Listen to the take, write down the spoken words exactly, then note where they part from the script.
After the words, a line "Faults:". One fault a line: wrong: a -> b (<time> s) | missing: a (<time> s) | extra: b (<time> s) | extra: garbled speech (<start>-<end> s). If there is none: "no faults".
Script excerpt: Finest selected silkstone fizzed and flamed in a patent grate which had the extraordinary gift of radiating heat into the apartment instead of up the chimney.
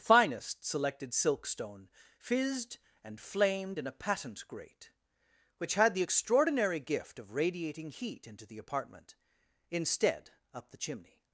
Finest selected silkstone fizzed and flamed in a patent grate which had the extraordinary gift of radiating heat into the apartment instead up the chimney.
Faults:
missing: of (10.3 s)